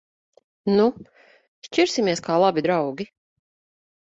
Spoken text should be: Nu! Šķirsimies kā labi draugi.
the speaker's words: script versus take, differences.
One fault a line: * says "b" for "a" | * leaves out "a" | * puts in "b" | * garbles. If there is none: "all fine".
all fine